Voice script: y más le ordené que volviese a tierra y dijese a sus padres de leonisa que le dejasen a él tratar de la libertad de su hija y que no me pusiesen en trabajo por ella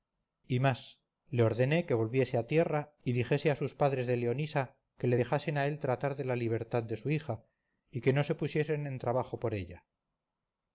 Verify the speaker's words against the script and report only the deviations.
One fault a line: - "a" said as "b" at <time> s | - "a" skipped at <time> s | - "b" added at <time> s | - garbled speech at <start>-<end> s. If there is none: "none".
- "me" said as "se" at 8.2 s